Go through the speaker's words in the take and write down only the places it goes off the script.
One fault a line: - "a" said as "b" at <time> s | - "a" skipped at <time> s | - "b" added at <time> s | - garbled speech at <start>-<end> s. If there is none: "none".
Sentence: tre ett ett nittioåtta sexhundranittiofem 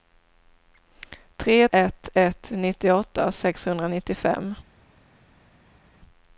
none